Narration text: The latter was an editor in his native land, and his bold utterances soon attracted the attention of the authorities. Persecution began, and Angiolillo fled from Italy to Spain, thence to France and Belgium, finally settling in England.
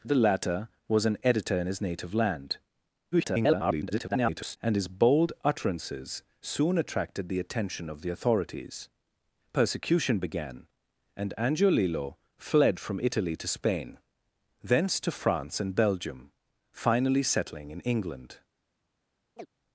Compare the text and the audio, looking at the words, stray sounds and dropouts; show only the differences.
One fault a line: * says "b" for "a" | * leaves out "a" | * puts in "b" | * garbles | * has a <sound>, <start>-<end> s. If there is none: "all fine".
* garbles
* has a chirp, 19.4-19.5 s